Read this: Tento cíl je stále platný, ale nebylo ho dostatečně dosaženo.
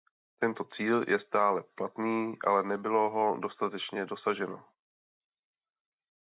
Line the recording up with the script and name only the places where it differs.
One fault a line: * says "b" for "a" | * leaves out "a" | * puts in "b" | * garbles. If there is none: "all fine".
all fine